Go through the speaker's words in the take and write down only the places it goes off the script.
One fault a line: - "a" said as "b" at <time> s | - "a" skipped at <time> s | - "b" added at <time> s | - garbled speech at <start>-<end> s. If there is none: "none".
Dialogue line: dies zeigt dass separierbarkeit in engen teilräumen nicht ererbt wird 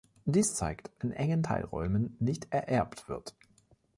- "dass separierbarkeit" skipped at 0.9 s